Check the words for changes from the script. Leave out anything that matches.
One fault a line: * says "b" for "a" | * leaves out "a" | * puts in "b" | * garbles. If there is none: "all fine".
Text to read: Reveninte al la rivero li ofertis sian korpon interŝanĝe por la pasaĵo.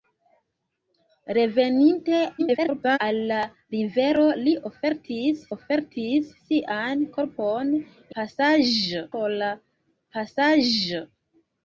* garbles
* puts in "ofertis"
* says "pasaĵo" for "interŝanĝe"